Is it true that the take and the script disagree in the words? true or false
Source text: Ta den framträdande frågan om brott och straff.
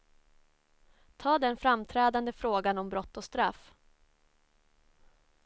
false